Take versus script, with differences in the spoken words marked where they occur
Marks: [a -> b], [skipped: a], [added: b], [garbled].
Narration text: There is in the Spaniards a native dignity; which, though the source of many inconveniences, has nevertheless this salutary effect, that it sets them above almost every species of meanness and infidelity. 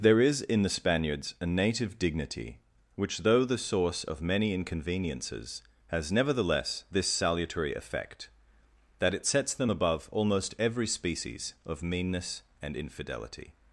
There is in the Spaniards a native dignity; which, though the source of many inconveniences, has nevertheless this salutary effect, that it sets them above almost every species of meanness and infidelity.